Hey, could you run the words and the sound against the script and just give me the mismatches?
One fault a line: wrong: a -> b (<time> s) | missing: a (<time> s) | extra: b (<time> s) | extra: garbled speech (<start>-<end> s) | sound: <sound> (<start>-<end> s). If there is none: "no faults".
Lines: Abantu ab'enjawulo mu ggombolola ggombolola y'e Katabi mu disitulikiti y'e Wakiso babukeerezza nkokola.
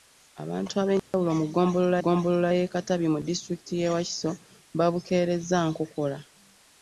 sound: dropout (1.0-1.1 s)